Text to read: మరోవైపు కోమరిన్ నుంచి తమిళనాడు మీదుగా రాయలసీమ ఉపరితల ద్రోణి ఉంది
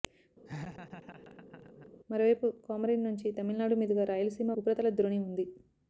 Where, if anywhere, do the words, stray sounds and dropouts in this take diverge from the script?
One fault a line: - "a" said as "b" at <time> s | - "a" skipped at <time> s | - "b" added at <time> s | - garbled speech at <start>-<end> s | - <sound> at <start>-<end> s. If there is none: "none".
- laugh at 0.5-1.9 s